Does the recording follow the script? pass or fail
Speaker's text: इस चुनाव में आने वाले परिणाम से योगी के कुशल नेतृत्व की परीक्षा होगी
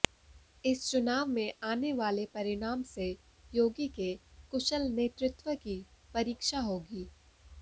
pass